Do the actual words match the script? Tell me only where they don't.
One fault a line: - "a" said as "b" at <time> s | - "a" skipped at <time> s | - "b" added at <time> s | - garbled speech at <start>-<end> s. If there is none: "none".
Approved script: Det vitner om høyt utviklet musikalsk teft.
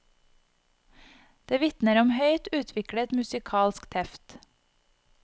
none